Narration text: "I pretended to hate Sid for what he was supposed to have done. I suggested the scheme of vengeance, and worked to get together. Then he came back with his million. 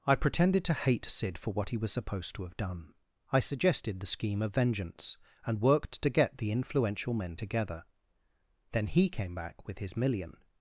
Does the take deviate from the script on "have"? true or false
false